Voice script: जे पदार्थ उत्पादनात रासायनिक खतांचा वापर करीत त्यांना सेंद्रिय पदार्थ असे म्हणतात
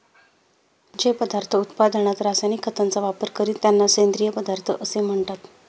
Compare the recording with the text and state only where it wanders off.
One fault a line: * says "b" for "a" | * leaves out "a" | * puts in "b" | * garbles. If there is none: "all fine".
all fine